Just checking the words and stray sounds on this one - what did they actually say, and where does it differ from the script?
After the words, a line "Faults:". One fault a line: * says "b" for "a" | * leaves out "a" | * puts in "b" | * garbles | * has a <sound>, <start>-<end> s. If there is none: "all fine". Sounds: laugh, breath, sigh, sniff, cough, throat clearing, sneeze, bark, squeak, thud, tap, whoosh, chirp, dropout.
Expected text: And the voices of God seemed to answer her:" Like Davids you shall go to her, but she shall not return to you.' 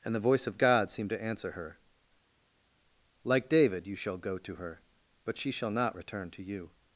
And the voice of God seemed to answer her:" Like David you shall go to her, but she shall not return to you.'
Faults:
* says "voice" for "voices"
* says "David" for "Davids"